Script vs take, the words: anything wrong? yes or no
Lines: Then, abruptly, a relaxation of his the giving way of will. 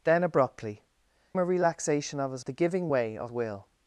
no